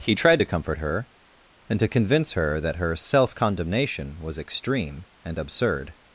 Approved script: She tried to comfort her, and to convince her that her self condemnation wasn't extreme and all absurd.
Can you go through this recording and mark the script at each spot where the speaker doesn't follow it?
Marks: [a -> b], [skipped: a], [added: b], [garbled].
[She -> He] tried to comfort her, and to convince her that her self condemnation [wasn't -> was] extreme and [skipped: all] absurd.